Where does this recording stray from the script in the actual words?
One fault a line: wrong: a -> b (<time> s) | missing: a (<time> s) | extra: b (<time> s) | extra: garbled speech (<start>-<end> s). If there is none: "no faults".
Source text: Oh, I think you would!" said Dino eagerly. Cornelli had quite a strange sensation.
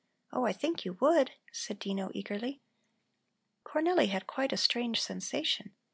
no faults